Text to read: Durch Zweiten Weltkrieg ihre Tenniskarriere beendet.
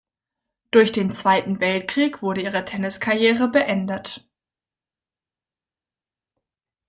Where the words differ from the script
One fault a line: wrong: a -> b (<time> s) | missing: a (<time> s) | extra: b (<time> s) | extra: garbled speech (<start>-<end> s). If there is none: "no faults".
extra: den (0.9 s)
extra: wurde (2.2 s)